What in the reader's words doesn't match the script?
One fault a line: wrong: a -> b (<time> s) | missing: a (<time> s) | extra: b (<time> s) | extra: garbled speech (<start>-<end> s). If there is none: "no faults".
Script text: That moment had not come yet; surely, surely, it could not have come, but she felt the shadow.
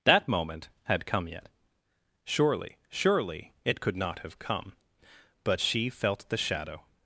missing: not (1.1 s)